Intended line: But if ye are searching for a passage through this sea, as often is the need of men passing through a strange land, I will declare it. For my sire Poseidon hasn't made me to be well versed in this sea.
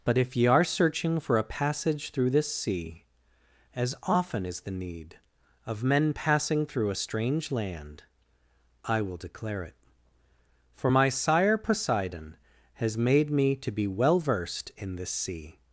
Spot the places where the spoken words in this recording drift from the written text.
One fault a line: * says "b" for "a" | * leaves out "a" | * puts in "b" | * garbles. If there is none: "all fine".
* says "has" for "hasn't"